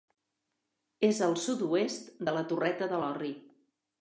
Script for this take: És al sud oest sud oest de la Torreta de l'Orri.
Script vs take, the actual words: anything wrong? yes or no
yes